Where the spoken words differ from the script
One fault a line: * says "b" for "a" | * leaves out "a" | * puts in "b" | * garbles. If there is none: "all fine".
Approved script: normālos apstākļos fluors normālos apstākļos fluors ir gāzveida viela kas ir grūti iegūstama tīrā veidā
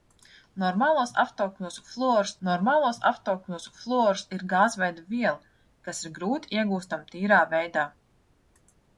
all fine